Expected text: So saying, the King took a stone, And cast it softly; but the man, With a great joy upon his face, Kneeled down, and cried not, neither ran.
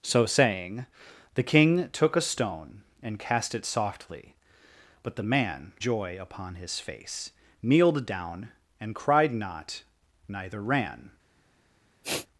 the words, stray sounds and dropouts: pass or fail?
fail